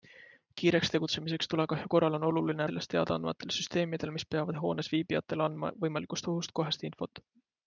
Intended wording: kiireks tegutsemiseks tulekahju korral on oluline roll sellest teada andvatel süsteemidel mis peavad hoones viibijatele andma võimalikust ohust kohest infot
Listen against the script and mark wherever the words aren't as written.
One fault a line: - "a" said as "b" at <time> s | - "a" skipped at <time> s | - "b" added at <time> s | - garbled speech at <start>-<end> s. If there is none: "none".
- "roll" skipped at 2.7 s